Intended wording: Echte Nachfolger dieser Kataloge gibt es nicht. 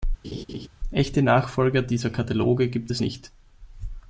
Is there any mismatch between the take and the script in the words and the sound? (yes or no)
yes